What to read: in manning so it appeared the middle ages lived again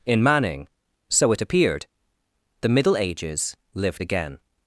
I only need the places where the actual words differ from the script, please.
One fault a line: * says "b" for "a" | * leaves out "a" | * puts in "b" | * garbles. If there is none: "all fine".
all fine